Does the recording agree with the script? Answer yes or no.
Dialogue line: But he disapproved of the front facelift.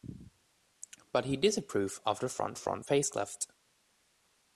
no